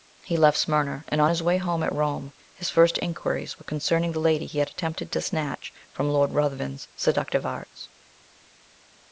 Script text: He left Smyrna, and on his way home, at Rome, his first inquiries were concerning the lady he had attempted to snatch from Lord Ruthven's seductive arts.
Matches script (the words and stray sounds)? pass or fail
pass